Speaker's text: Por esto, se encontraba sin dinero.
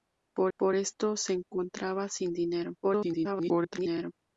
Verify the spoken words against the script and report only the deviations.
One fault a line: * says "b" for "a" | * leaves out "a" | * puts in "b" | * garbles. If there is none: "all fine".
* puts in "por"
* garbles